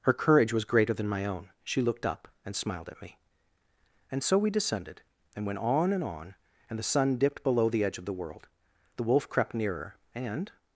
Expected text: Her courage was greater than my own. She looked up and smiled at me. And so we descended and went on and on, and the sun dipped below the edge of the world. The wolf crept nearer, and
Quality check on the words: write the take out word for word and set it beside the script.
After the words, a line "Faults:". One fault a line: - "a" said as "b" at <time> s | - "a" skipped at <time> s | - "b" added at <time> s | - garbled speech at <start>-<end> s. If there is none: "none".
Her courage was greater than my own. She looked up and smiled at me. And so we descended and went on and on, and the sun dipped below the edge of the world. The wolf crept nearer, and
Faults:
none